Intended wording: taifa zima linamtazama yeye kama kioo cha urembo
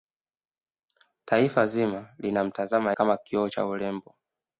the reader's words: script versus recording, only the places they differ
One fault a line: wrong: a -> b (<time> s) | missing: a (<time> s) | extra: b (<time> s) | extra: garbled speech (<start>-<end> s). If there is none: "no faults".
missing: yeye (2.9 s)